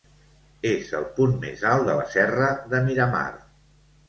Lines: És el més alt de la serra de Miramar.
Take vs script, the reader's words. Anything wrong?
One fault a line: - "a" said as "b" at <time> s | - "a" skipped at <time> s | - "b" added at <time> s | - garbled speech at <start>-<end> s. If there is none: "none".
- "punt" added at 1.2 s